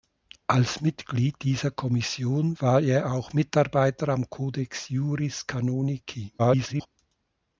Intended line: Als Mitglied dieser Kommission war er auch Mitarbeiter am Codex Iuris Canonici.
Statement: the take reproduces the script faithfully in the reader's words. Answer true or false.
false